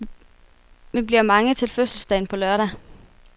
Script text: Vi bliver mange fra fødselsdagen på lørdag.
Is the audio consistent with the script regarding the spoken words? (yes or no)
no